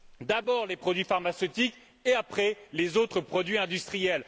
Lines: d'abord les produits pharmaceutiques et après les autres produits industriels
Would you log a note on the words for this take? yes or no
no